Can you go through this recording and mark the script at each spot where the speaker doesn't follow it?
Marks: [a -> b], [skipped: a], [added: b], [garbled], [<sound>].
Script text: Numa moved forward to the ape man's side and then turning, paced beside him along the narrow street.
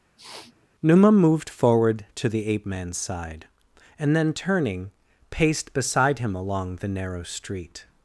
[sniff] Numa moved forward to the ape man's side and then turning, paced beside him along the narrow street.